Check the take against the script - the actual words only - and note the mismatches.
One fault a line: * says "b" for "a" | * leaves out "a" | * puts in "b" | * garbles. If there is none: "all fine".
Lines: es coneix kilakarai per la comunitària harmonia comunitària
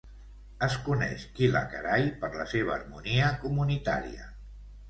* says "seva" for "comunitària"